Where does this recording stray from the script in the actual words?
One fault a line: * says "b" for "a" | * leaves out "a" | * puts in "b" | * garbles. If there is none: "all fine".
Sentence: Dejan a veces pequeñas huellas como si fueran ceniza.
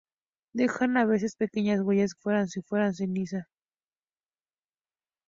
* says "fueran" for "como"